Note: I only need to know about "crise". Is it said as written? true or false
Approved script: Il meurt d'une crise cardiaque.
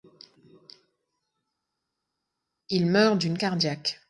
false